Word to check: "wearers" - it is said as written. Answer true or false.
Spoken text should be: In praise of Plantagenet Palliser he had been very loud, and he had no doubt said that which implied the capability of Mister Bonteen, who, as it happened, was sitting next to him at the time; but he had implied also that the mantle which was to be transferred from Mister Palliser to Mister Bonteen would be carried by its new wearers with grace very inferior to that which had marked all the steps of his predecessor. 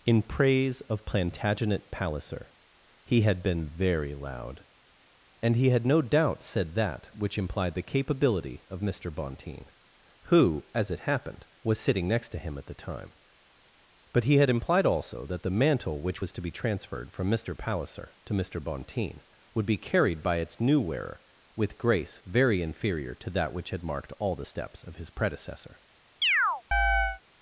false